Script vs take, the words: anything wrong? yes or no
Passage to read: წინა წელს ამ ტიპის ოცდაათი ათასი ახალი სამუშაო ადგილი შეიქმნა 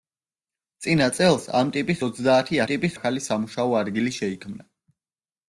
yes